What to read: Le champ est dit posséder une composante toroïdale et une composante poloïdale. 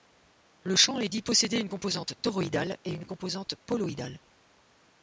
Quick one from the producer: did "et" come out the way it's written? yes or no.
yes